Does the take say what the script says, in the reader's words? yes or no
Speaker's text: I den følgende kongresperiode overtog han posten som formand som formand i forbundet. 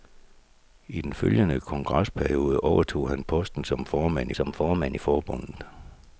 yes